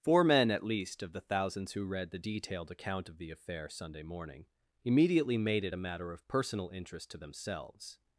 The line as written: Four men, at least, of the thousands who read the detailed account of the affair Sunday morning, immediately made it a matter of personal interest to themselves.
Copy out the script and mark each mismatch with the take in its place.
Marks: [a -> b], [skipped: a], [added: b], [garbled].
Four men, at least, of the thousands who read the detailed account of the affair Sunday morning, immediately made it a matter of personal interest to themselves.